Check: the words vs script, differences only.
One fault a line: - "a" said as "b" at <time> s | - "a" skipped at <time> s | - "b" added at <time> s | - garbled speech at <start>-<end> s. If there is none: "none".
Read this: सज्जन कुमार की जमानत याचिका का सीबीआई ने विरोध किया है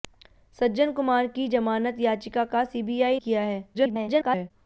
- "ने विरोध" skipped at 3.2 s
- garbled speech at 3.7-4.5 s